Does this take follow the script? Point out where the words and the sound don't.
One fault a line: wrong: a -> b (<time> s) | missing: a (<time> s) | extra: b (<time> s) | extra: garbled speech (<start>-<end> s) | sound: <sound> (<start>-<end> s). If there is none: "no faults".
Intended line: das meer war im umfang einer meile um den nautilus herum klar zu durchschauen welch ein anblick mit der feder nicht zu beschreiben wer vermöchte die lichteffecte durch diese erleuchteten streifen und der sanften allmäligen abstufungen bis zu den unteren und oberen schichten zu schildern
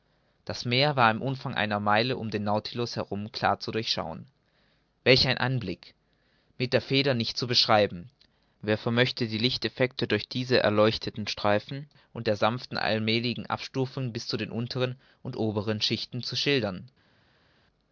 no faults